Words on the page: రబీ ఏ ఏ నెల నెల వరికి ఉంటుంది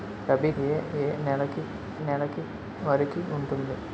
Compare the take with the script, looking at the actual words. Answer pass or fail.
pass